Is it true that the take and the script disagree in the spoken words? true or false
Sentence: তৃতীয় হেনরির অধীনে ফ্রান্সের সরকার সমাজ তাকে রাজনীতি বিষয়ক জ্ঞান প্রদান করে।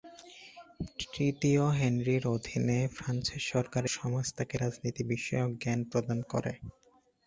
false